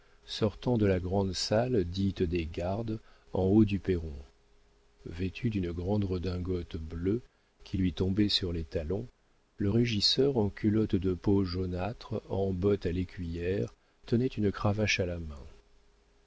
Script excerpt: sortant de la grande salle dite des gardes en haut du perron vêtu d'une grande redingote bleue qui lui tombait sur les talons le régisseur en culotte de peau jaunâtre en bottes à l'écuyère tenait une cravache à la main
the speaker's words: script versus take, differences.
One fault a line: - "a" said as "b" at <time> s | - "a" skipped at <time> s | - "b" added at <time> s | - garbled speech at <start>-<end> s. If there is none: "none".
none